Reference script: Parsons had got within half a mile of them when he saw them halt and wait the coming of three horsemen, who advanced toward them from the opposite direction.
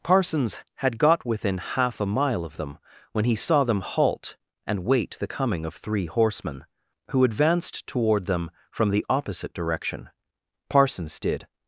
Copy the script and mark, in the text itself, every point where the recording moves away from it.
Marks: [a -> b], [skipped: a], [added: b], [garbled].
Parsons had got within half a mile of them when he saw them halt and wait the coming of three horsemen, who advanced toward them from the opposite direction. [added: Parsons did]